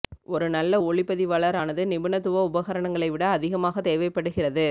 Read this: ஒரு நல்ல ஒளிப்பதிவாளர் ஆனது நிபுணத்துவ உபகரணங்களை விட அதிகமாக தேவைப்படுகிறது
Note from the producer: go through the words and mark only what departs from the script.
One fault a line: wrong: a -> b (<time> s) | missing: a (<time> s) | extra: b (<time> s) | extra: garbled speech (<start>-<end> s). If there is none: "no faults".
no faults